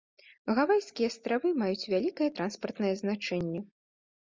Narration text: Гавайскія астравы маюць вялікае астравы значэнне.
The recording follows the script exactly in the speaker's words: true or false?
false